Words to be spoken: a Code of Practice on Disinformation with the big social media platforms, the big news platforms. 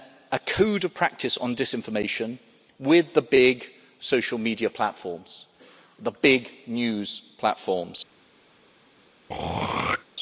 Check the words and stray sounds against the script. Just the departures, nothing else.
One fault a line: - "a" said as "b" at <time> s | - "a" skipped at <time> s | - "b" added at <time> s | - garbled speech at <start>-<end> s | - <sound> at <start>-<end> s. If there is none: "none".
- throat clearing at 9.3-10.0 s